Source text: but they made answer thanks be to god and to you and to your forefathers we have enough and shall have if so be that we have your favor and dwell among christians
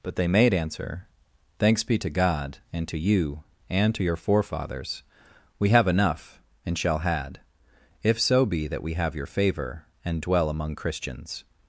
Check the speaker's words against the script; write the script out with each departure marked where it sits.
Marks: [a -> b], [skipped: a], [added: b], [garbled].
but they made answer thanks be to god and to you and to your forefathers we have enough and shall [have -> had] if so be that we have your favor and dwell among christians